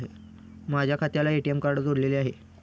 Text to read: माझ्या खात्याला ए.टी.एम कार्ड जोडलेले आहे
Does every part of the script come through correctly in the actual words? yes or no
yes